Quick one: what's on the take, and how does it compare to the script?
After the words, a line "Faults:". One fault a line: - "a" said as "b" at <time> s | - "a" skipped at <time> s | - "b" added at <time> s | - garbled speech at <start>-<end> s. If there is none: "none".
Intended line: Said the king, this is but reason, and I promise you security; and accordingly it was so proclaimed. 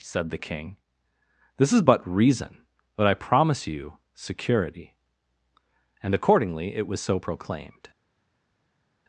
Said the king, this is but reason, but I promise you security; and accordingly it was so proclaimed.
Faults:
- "and" said as "but" at 2.9 s